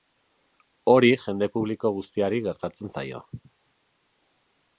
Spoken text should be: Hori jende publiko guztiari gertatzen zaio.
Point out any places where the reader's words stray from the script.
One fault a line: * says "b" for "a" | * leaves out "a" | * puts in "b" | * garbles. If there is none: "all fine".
all fine